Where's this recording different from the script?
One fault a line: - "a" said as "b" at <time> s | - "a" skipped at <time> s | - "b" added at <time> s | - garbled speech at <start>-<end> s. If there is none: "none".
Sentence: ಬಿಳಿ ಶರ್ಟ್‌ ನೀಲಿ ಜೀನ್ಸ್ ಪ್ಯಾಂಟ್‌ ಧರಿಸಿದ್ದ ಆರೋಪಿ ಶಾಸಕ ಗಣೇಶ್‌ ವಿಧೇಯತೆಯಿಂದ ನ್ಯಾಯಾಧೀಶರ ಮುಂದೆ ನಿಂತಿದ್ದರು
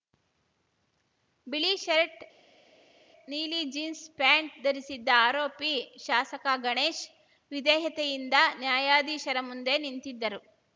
none